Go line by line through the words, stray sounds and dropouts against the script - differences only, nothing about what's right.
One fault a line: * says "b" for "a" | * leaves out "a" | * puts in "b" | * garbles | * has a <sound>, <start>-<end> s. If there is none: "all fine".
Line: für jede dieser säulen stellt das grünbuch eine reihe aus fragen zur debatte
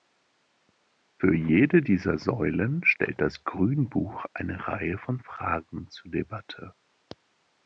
* says "von" for "aus"